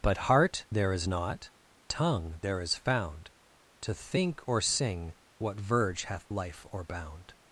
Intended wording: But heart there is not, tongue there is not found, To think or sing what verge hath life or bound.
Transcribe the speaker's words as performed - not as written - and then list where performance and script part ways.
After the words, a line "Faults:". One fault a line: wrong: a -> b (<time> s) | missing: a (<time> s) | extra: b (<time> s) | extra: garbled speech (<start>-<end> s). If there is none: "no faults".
But heart there is not, tongue there is found, To think or sing what verge hath life or bound.
Faults:
missing: not (2.8 s)